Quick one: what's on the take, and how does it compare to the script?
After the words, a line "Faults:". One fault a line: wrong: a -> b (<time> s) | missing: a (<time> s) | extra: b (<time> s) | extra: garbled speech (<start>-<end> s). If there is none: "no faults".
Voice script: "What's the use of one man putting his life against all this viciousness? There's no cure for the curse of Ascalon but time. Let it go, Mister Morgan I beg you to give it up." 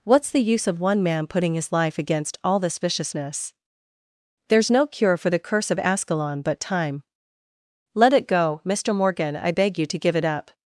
"What's the use of one man putting his life against all this viciousness? There's no cure for the curse of Ascalon but time. Let it go, Mister Morgan I beg you to give it up."
Faults:
no faults